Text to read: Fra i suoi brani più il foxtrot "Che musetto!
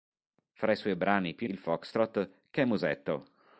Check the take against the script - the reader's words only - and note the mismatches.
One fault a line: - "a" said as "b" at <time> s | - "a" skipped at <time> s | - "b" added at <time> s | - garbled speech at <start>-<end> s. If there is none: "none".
none